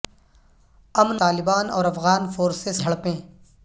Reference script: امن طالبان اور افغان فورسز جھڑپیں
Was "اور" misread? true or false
false